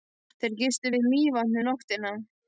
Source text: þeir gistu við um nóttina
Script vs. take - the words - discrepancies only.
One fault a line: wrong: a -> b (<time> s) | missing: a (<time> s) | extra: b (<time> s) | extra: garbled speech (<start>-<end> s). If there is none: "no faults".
extra: mývatn (1.1 s)